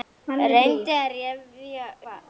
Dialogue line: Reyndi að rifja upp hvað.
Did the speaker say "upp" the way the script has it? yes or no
no